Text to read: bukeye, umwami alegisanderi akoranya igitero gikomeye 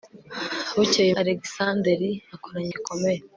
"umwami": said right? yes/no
no